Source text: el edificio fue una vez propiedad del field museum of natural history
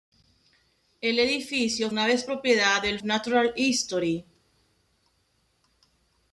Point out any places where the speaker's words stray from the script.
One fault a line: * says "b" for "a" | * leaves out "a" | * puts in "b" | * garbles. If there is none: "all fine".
* leaves out "fue"
* leaves out "field museum of"